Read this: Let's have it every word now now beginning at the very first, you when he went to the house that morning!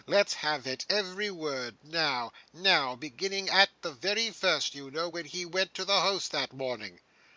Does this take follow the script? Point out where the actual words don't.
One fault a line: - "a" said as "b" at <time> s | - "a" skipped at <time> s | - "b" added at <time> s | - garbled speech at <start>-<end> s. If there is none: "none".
- "know" added at 4.9 s